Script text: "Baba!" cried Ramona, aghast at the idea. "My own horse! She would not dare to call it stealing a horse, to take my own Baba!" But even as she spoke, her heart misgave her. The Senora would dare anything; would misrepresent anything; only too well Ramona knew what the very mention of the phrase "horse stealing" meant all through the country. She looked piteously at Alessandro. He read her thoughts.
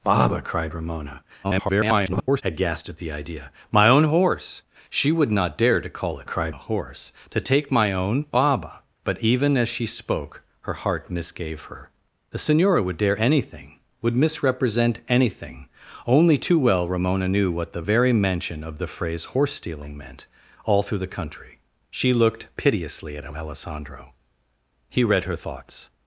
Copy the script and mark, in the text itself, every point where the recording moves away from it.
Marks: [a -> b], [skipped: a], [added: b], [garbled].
"Baba!" cried Ramona, [garbled] aghast at the idea. "My own horse! She would not dare to call it [stealing -> cried] a horse, to take my own Baba!" But even as she spoke, her heart misgave her. The Senora would dare anything; would misrepresent anything; only too well Ramona knew what the very mention of the phrase "horse stealing" meant all through the country. She looked piteously at Alessandro. He read her thoughts.